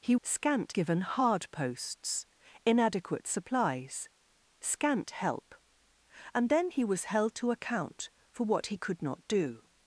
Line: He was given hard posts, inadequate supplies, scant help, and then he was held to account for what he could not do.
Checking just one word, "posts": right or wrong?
right